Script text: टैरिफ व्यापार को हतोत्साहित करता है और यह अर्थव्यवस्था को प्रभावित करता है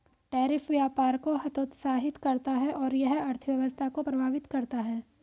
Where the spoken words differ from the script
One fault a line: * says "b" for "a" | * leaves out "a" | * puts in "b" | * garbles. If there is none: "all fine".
all fine